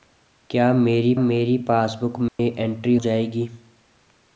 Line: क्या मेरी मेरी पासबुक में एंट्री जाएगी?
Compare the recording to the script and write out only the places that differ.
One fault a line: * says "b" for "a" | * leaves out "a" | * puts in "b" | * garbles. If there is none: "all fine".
all fine